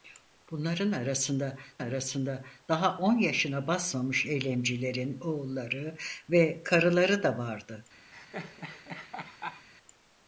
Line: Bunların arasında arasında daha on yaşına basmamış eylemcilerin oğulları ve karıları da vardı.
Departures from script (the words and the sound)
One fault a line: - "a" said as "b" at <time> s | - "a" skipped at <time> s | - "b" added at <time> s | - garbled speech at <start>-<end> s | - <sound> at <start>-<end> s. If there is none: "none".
- laugh at 8.1-9.7 s